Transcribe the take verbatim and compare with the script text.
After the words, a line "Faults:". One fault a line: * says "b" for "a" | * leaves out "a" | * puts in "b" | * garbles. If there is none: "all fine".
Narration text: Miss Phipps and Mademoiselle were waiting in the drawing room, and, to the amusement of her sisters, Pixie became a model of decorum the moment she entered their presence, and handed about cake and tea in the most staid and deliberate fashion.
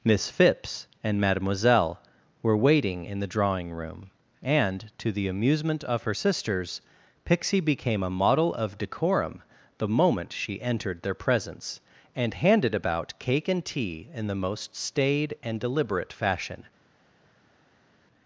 Miss Phipps and Mademoiselle were waiting in the drawing room, and, to the amusement of her sisters, Pixie became a model of decorum the moment she entered their presence, and handed about cake and tea in the most staid and deliberate fashion.
Faults:
all fine